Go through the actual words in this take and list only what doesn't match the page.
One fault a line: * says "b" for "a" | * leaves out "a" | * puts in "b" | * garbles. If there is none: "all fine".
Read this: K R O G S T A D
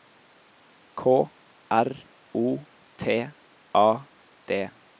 * leaves out "G S"